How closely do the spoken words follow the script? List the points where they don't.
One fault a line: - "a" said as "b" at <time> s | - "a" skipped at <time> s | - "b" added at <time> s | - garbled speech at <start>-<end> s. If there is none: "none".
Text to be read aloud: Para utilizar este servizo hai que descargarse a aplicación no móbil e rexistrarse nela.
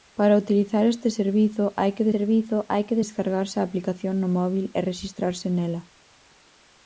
- "servizo hai que" added at 2.1 s